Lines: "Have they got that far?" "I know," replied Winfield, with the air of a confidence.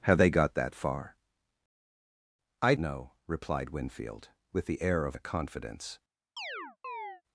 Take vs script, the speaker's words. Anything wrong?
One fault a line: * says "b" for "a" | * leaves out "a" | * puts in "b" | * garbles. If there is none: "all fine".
all fine